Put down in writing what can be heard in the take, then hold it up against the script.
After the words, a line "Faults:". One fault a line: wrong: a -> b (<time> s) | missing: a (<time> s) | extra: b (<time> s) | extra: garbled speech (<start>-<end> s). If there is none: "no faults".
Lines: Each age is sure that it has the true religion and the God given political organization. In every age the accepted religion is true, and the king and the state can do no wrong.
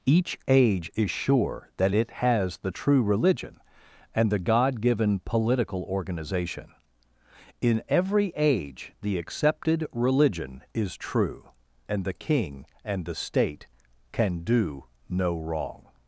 Each age is sure that it has the true religion and the God given political organization. In every age the accepted religion is true, and the king and the state can do no wrong.
Faults:
no faults